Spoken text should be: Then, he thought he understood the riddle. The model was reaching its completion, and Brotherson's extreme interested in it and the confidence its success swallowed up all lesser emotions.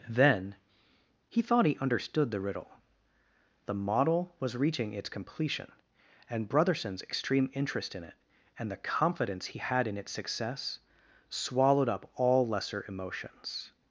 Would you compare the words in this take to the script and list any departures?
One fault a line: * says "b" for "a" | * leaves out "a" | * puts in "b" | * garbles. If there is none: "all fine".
* says "interest" for "interested"
* puts in "he had in"